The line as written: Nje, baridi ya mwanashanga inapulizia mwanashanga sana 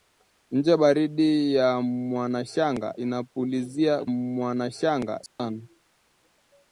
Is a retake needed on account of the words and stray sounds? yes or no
yes